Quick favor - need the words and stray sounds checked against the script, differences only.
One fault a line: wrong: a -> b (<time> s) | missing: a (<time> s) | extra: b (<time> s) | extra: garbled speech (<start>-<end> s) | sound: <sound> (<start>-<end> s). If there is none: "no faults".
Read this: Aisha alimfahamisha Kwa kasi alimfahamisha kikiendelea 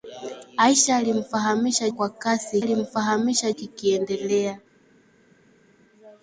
no faults